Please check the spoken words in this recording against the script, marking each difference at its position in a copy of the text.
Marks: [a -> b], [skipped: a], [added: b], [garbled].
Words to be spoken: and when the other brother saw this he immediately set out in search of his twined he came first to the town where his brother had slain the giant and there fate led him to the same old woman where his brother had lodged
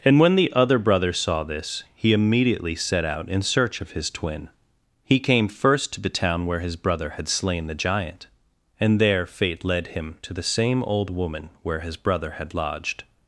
and when the other brother saw this he immediately set out in search of his [twined -> twin] he came first to the town where his brother had slain the giant and there fate led him to the same old woman where his brother had lodged